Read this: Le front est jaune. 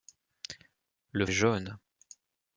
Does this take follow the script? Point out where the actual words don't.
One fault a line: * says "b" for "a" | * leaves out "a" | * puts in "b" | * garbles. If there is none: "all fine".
* leaves out "front"